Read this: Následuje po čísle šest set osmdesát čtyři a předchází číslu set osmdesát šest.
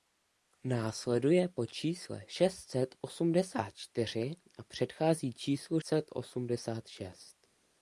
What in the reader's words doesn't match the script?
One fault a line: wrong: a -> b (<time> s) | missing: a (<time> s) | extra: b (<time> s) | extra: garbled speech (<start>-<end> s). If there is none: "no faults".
no faults